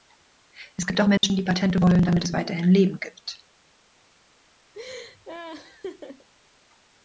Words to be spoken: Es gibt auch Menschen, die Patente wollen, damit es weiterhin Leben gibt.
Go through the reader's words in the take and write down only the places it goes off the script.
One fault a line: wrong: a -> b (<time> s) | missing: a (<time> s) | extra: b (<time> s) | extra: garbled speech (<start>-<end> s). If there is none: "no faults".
no faults